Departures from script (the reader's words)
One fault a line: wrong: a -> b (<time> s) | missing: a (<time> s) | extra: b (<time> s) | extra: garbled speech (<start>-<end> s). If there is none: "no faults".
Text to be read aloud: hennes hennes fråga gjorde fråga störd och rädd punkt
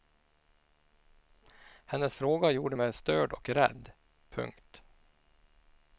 missing: hennes (2.1 s)
wrong: fråga -> mig (2.7 s)